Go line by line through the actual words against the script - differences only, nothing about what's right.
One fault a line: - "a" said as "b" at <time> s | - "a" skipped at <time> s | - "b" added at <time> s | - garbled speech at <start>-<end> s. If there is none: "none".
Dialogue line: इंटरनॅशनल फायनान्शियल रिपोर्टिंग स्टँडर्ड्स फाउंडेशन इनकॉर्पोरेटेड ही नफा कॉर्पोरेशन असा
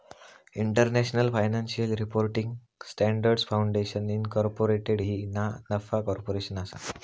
- "ना" added at 5.3 s